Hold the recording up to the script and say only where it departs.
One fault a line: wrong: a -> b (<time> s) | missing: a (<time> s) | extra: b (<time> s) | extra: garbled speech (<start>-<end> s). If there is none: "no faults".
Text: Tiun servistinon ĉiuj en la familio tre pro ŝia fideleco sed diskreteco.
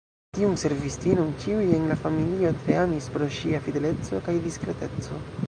extra: amis (2.8 s)
wrong: sed -> kaj (4.3 s)